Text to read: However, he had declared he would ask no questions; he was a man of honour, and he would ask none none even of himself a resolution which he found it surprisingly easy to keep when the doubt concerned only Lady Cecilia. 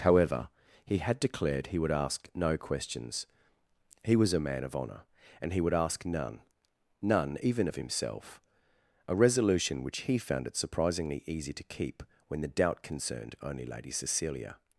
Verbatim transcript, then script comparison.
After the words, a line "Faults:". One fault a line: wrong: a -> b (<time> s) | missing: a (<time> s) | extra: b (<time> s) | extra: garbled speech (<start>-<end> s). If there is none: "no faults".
However, he had declared he would ask no questions; he was a man of honour, and he would ask none none even of himself a resolution which he found it surprisingly easy to keep when the doubt concerned only Lady Cecilia.
Faults:
no faults